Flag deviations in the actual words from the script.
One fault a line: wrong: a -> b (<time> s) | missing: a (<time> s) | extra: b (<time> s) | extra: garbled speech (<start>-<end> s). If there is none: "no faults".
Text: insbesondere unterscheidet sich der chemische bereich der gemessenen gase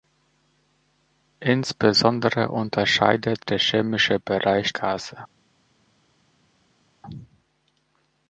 missing: sich (3.5 s)
missing: der gemessenen (4.8 s)